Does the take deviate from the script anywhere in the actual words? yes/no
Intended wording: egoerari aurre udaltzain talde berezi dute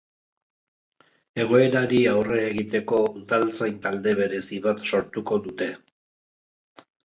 yes